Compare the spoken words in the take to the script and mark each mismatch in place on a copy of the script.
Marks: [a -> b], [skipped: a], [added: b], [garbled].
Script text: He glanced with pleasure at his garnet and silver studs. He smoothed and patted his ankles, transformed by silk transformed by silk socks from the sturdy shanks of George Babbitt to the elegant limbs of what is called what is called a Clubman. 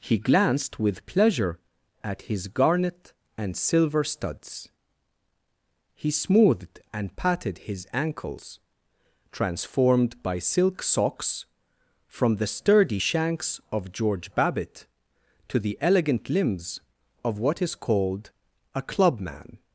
He glanced with pleasure at his garnet and silver studs. He smoothed and patted his ankles, transformed by silk [skipped: transformed by silk] socks from the sturdy shanks of George Babbitt to the elegant limbs of what is called [skipped: what is called] a Clubman.